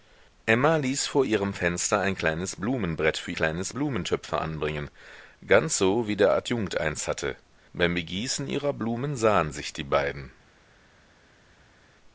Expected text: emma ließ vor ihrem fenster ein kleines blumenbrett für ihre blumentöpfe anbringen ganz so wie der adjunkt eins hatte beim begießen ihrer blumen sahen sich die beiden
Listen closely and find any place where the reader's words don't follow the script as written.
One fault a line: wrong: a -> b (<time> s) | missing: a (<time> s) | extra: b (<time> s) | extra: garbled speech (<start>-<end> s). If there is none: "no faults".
wrong: ihre -> kleines (3.3 s)